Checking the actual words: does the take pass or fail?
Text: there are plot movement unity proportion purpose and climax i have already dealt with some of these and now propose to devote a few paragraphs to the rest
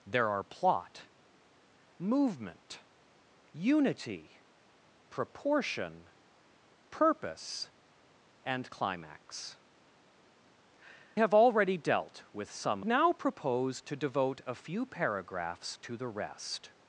fail